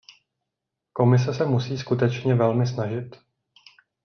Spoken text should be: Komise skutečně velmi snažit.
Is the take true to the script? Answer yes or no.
no